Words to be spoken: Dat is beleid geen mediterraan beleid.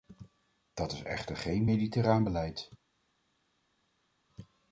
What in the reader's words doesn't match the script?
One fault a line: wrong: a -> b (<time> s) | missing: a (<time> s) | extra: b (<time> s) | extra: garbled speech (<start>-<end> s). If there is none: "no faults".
wrong: beleid -> echter (1.0 s)